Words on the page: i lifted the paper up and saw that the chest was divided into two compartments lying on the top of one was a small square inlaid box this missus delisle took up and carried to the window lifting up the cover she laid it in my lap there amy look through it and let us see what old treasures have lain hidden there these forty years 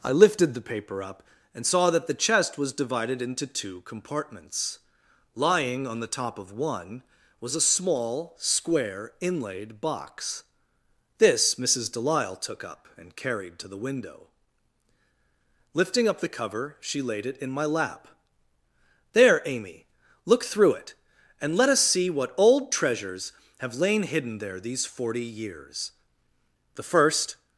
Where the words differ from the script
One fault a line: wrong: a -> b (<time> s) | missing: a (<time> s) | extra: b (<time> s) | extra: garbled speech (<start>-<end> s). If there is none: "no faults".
extra: the first (26.7 s)